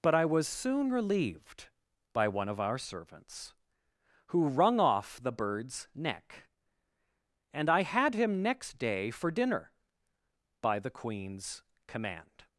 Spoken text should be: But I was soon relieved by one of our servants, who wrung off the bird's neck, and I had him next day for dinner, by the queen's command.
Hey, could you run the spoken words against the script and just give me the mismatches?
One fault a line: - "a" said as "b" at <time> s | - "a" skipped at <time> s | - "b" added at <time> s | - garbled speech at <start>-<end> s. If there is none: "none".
none